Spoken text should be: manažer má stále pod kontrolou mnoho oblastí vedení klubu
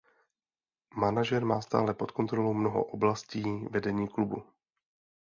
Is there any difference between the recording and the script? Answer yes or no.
no